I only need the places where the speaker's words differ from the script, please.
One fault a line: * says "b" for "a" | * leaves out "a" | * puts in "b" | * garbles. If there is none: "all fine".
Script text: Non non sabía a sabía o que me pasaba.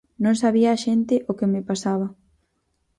* leaves out "non"
* says "xente" for "sabía"